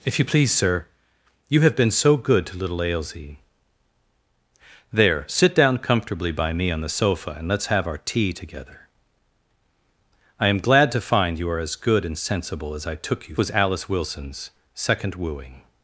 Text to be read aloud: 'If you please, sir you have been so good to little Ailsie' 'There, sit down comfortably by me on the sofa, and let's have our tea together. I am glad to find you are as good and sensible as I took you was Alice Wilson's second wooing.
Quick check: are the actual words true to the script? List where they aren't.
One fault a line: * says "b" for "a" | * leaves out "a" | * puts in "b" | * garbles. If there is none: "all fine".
all fine